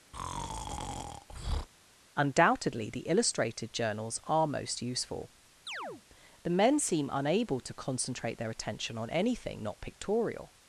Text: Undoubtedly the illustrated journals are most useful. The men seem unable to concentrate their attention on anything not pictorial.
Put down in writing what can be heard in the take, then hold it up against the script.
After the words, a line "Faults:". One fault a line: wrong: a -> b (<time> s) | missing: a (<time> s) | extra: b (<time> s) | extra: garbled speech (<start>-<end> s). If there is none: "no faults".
Undoubtedly the illustrated journals are most useful. The men seem unable to concentrate their attention on anything not pictorial.
Faults:
no faults